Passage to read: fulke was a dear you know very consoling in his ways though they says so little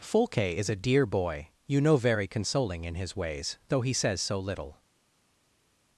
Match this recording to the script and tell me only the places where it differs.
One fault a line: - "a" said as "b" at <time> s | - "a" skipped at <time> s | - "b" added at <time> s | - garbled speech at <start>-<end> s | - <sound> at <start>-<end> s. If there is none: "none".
- "was" said as "is" at 0.6 s
- "boy" added at 1.1 s
- "they" said as "he" at 3.8 s